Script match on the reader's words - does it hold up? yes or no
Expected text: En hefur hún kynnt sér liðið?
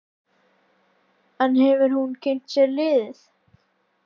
yes